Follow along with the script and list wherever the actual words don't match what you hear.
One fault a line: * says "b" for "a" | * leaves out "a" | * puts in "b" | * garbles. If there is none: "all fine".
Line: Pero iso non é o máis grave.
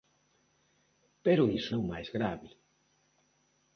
* leaves out "non"